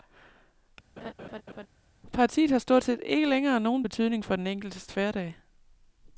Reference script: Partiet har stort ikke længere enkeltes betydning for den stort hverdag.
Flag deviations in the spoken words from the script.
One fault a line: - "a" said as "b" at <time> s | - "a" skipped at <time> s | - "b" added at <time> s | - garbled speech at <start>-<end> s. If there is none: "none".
- "set" added at 2.8 s
- "enkeltes" said as "nogen" at 3.6 s
- "stort" said as "enkeltes" at 4.5 s